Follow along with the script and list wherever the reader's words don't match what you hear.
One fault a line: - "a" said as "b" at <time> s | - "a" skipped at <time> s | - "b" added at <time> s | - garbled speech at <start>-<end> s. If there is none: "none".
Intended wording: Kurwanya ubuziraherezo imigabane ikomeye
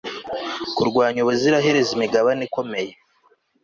none